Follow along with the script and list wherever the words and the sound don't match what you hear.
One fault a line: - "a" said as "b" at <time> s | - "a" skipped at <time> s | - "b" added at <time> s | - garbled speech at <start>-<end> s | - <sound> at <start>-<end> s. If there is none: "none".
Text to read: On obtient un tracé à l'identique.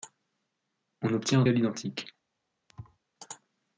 - "tracé" skipped at 1.4 s
- thud at 2.7-3.0 s